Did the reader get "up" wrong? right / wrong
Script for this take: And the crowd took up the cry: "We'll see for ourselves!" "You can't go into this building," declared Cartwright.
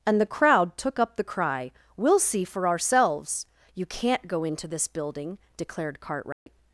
right